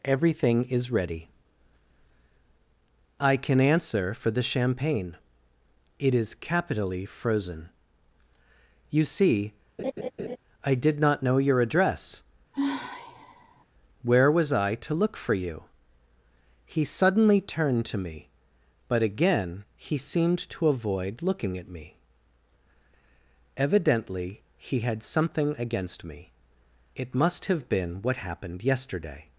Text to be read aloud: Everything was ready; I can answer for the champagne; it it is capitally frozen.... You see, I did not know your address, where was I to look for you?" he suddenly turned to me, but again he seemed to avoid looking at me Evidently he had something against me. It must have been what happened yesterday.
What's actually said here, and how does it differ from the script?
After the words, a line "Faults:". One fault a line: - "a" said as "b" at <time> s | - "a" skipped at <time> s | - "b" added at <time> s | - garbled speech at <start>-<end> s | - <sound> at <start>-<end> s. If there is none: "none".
Everything is ready; I can answer for the champagne; it is capitally frozen.... You see, I did not know your address, where was I to look for you?" he suddenly turned to me, but again he seemed to avoid looking at me Evidently he had something against me. It must have been what happened yesterday.
Faults:
- "was" said as "is" at 0.6 s
- "it" skipped at 6.2 s
- laugh at 9.8-10.4 s
- sigh at 12.5-13.6 s